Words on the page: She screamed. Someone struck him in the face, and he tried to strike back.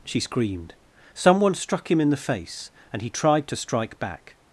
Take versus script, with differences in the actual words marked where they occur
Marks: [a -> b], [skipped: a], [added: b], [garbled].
She screamed. Someone struck him in the face, and he tried to strike back.